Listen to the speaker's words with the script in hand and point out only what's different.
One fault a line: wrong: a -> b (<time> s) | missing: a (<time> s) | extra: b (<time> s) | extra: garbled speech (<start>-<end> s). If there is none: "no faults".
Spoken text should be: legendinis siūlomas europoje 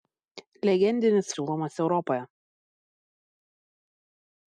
no faults